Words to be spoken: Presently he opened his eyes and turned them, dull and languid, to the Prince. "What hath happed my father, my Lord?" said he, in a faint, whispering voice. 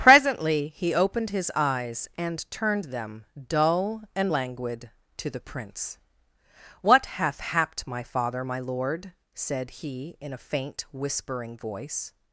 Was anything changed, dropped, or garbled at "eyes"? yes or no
no